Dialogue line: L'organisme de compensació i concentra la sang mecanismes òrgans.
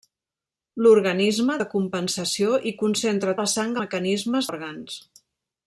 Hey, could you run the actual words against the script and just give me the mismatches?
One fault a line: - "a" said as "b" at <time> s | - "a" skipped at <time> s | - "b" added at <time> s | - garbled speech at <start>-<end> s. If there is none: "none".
none